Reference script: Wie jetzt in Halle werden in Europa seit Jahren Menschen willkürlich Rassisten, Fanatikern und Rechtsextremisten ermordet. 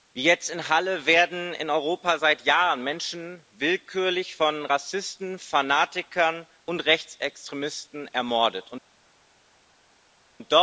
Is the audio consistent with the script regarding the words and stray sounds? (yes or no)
no